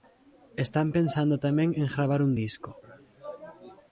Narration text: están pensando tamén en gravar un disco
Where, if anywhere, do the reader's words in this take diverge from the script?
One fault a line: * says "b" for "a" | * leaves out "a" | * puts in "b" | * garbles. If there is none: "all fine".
all fine